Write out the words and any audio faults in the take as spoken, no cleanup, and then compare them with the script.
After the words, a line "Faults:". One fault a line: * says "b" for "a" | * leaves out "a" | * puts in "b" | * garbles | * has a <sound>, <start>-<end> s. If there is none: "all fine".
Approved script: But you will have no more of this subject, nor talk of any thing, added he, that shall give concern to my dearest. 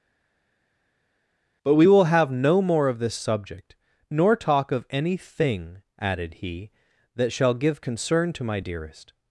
But we will have no more of this subject, nor talk of any thing, added he, that shall give concern to my dearest.
Faults:
* says "we" for "you"